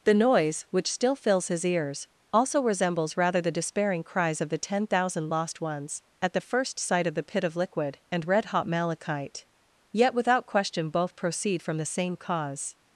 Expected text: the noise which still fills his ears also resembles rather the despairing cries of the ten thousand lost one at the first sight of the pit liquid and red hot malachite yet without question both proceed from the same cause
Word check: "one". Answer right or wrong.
wrong